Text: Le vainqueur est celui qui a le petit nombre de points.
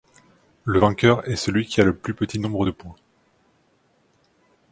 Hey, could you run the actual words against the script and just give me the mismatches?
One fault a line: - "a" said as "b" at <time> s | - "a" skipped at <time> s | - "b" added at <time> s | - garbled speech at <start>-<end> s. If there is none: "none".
- "plus" added at 1.9 s